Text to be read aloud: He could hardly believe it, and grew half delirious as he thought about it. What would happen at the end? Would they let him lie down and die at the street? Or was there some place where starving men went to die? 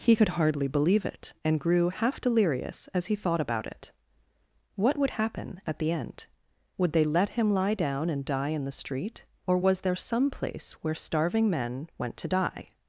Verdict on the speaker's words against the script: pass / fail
fail